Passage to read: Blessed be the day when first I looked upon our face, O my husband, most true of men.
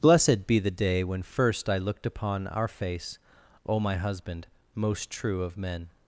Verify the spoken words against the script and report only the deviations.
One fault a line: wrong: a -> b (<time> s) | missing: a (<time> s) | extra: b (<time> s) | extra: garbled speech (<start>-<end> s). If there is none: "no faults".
no faults